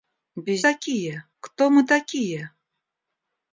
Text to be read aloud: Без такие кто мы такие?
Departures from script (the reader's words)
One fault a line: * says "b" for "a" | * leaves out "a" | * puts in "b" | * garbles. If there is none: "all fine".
all fine